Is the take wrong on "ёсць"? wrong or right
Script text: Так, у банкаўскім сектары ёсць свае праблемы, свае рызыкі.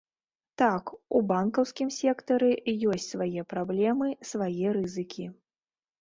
right